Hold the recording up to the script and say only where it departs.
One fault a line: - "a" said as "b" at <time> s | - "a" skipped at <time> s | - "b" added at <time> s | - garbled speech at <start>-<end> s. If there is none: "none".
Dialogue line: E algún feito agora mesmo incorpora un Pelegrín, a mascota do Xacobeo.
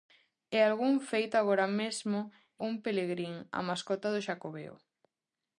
- "incorpora" skipped at 2.2 s